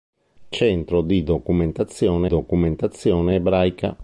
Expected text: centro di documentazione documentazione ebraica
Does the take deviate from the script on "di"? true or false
false